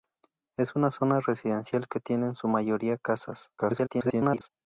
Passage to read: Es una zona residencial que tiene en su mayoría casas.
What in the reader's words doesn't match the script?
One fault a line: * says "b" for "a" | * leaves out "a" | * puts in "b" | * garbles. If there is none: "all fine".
* garbles